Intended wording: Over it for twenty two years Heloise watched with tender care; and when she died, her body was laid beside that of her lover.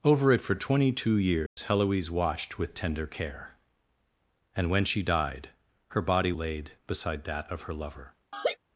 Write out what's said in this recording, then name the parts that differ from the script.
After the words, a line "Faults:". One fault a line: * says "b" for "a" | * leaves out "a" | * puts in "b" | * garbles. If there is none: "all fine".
Over it for twenty two years Heloise watched with tender care; and when she died, her body laid beside that of her lover.
Faults:
* leaves out "was"